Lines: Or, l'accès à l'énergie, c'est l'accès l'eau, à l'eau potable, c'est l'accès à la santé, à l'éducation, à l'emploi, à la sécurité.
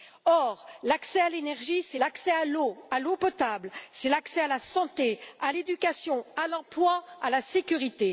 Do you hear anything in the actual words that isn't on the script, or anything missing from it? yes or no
yes